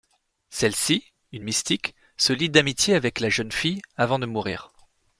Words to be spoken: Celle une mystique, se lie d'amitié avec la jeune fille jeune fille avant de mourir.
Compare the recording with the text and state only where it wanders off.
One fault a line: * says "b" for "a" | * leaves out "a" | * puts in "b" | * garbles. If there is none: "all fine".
* puts in "ci"
* leaves out "jeune fille"